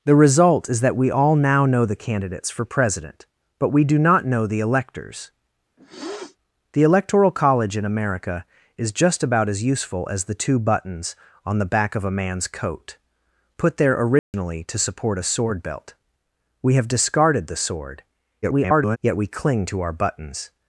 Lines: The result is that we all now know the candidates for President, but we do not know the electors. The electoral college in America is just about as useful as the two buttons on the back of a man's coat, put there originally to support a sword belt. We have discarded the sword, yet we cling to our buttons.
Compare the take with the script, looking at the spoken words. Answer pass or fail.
fail